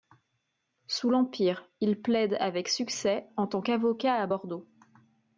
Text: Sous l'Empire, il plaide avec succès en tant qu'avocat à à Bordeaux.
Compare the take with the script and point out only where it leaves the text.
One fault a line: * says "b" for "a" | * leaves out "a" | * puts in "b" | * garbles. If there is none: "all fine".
* leaves out "à"